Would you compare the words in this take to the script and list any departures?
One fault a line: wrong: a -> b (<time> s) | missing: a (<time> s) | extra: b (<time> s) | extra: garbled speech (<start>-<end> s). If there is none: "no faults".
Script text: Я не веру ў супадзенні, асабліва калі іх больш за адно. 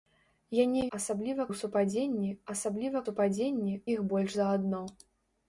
wrong: веру -> асабліва (1.0 s)
wrong: калі -> супадзенні (3.1 s)